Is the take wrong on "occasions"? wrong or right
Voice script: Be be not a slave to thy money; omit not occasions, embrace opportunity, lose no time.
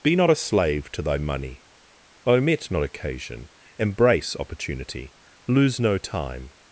wrong